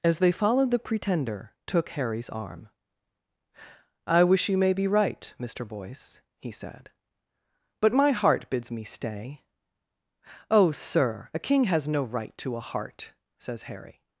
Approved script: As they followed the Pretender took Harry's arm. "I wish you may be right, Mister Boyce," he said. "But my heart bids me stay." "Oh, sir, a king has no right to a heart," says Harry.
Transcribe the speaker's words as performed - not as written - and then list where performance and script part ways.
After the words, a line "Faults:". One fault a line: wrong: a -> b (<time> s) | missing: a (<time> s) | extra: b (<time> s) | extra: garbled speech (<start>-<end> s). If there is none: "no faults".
As they followed the Pretender took Harry's arm. "I wish you may be right, Mister Boyce," he said. "But my heart bids me stay." "Oh, sir, a king has no right to a heart," says Harry.
Faults:
no faults